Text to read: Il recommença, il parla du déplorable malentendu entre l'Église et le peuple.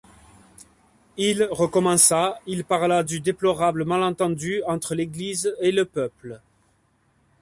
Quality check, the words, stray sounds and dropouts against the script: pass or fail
pass